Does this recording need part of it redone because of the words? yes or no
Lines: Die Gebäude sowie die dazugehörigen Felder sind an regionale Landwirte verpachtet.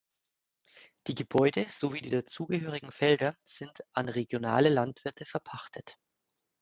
no